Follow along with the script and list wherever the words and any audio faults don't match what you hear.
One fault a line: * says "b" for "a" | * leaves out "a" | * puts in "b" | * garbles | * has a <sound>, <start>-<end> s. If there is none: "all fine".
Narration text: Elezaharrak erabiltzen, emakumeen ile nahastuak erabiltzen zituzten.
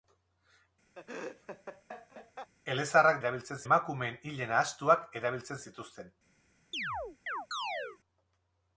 * has a laugh, 1.0-2.5 s
* has a chirp, 6.7-8.0 s